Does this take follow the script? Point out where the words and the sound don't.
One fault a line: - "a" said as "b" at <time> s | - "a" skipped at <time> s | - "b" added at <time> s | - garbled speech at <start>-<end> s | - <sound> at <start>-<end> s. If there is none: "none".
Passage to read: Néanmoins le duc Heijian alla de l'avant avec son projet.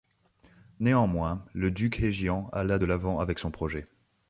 none